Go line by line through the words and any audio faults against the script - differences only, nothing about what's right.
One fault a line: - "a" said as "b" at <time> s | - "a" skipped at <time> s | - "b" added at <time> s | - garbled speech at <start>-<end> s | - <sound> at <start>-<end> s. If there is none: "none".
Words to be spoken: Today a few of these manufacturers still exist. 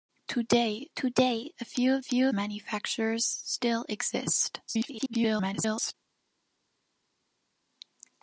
- "today" added at 0.9 s
- "these" said as "few" at 2.0 s
- garbled speech at 4.7-5.9 s